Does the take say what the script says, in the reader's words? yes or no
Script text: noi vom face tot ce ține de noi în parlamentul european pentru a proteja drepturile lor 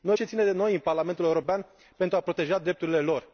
no